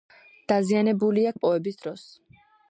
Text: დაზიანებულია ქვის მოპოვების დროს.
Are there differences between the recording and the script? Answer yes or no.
yes